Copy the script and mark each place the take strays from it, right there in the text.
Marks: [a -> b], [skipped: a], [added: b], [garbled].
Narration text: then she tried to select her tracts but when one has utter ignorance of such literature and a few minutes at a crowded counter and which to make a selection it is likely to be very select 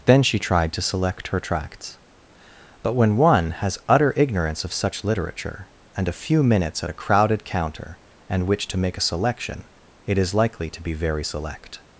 then she tried to select her tracts but when one has utter ignorance of such literature and a few minutes at a crowded counter and which to make a selection it is likely to be very select